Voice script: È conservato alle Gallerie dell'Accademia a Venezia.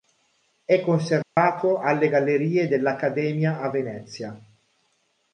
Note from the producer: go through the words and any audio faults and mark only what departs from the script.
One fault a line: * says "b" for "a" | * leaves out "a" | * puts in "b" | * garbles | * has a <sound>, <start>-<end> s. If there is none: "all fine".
* has a dropout, 1.2-1.4 s